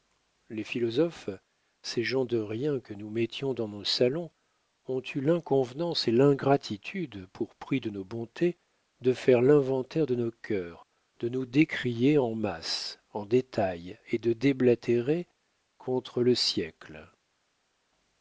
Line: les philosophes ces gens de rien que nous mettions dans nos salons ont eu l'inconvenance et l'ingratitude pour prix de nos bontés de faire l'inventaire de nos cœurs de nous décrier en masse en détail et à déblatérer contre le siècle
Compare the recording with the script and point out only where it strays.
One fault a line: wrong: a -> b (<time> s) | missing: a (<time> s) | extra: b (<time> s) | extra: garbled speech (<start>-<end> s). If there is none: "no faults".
wrong: à -> de (14.2 s)